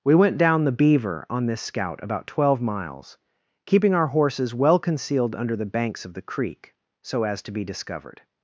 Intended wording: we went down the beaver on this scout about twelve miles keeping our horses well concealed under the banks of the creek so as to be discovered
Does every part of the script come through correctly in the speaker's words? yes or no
yes